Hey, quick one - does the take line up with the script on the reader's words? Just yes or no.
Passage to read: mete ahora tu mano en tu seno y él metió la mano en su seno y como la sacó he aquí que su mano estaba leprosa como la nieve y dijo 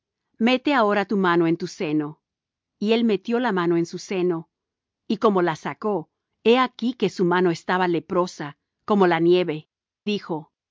no